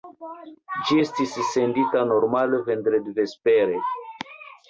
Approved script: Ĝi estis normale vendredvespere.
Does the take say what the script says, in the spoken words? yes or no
no